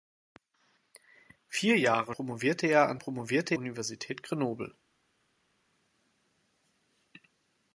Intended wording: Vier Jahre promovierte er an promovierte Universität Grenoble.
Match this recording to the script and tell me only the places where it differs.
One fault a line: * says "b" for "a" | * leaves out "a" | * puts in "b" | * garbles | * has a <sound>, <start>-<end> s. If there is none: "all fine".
all fine